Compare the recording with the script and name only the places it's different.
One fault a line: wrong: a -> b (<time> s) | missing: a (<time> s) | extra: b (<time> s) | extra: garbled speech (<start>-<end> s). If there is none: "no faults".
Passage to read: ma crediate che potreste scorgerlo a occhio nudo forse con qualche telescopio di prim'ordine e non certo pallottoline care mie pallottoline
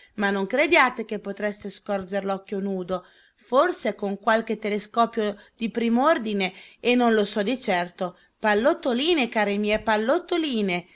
extra: non (0.3 s)
extra: lo so di (7.1 s)